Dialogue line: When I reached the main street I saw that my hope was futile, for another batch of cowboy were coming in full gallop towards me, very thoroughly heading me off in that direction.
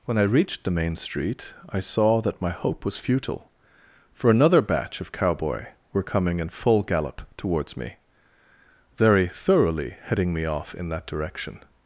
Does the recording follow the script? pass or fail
pass